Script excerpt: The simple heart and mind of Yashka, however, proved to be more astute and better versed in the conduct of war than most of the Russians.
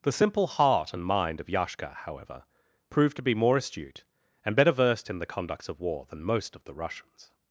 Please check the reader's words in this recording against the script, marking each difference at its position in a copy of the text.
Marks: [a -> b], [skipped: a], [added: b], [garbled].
The simple heart and mind of Yashka, however, proved to be more astute and better versed in the [conduct -> conducts] of war than most of the Russians.